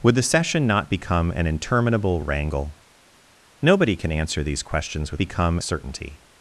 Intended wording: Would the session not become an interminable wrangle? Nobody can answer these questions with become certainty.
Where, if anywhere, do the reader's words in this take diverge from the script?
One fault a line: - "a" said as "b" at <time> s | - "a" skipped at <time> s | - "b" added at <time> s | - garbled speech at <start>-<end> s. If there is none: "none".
none